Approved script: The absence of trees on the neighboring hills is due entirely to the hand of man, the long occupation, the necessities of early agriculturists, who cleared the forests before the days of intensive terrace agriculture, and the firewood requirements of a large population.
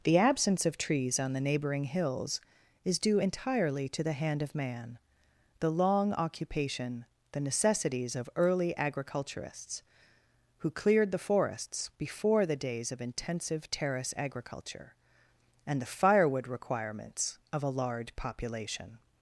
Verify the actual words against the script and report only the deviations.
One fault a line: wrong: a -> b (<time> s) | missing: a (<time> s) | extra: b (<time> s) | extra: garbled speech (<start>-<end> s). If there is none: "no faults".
no faults